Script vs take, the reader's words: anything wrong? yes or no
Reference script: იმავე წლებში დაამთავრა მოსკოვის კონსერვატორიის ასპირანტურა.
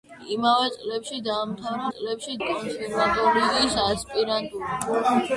yes